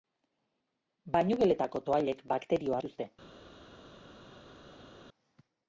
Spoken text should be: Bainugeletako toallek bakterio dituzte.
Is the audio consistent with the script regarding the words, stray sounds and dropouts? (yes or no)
yes